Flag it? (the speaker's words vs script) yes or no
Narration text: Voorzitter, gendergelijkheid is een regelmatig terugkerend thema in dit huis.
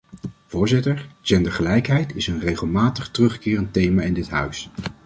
no